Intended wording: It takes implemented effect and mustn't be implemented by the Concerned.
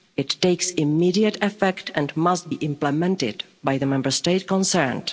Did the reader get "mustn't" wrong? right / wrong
wrong